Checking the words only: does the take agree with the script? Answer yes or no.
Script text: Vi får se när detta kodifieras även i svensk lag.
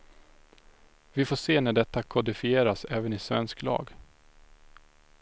yes